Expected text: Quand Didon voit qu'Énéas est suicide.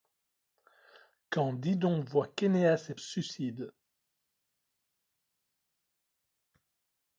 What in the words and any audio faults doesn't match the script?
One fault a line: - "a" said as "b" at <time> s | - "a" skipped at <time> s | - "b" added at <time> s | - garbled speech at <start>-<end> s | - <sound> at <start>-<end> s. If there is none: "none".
none